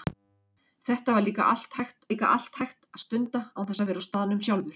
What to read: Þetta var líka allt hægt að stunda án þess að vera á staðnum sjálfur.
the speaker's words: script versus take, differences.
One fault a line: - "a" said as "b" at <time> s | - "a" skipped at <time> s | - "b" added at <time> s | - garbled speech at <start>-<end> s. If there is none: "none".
- "líka allt hægt" added at 2.1 s